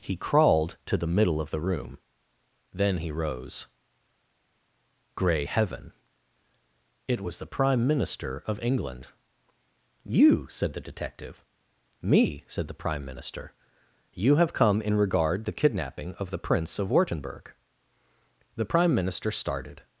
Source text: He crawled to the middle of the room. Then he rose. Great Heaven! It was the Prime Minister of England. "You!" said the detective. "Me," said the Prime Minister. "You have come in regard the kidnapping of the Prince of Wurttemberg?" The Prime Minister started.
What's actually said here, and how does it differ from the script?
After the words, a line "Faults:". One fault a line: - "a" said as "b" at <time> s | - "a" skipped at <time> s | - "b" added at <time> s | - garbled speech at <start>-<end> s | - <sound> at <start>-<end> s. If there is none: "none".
He crawled to the middle of the room. Then he rose. Grey Heaven! It was the Prime Minister of England. "You!" said the detective. "Me," said the Prime Minister. "You have come in regard the kidnapping of the Prince of Wurttemberg?" The Prime Minister started.
Faults:
- "Great" said as "Grey" at 5.1 s